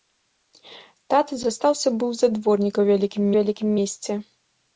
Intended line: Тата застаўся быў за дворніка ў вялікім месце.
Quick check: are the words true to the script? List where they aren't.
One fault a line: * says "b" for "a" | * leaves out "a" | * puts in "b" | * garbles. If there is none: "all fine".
* puts in "вялікім"